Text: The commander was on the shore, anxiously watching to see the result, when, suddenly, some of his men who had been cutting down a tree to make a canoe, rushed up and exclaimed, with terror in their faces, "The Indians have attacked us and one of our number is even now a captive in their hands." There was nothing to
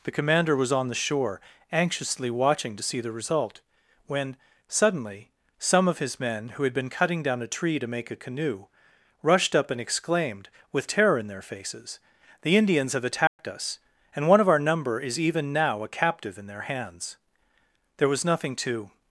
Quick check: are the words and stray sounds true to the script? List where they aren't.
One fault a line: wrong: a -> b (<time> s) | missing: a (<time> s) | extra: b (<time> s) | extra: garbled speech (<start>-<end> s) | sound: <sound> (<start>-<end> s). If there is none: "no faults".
sound: dropout (13.3-13.4 s)